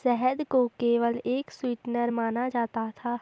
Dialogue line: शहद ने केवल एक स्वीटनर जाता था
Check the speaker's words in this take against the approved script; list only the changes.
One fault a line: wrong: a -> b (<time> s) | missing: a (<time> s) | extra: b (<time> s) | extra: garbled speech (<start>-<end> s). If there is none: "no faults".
wrong: ने -> को (0.5 s)
extra: माना (2.1 s)